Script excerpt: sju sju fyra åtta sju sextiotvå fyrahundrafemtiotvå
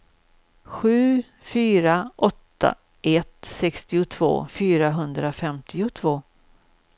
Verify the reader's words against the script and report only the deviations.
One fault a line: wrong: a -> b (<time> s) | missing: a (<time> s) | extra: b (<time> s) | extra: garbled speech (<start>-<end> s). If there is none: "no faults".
missing: sju (1.2 s)
wrong: sju -> ett (3.0 s)